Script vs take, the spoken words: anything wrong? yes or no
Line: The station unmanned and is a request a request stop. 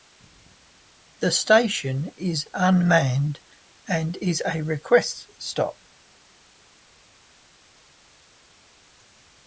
yes